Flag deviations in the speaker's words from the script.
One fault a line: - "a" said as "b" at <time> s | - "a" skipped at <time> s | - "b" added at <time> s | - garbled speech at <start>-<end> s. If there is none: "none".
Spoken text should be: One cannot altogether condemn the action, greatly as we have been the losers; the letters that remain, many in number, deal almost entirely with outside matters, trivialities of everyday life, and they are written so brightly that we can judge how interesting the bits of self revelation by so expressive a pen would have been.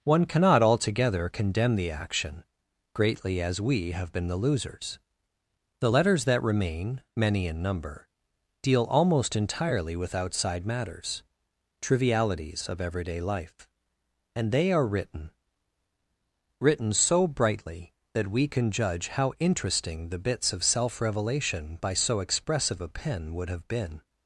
- "written" added at 16.6 s